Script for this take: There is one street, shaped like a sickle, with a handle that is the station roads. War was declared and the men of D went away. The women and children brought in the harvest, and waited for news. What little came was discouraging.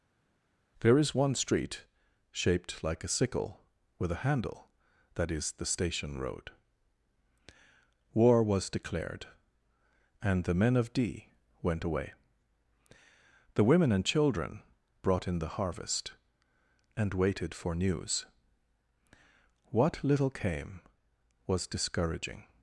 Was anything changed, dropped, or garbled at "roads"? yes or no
yes